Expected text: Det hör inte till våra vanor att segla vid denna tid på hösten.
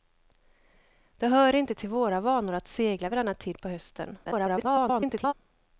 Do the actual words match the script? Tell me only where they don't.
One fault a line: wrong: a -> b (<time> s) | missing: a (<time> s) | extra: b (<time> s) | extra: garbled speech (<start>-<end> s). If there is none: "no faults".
extra: garbled speech (4.2-5.3 s)